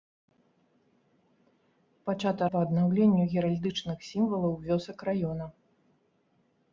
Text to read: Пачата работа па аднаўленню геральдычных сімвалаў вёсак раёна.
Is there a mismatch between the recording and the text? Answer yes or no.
yes